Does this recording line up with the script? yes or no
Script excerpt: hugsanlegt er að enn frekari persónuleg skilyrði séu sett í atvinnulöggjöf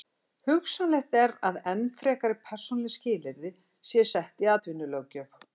yes